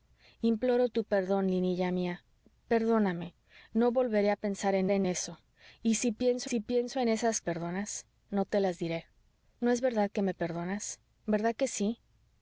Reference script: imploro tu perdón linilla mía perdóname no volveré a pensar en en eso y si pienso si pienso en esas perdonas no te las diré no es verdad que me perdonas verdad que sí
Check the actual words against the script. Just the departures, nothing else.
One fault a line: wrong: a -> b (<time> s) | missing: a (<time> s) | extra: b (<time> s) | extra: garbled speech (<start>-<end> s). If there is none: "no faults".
no faults